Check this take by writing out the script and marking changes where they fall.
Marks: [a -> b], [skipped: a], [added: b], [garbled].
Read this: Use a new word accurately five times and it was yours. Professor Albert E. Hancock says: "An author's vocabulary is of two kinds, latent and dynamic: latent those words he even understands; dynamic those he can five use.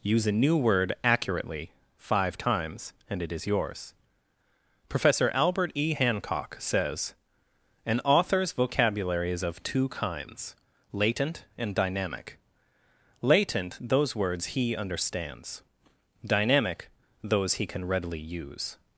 Use a new word accurately five times and it [was -> is] yours. Professor Albert E. Hancock says: "An author's vocabulary is of two kinds, latent and dynamic: latent those words he [skipped: even] understands; dynamic those he can [five -> readily] use.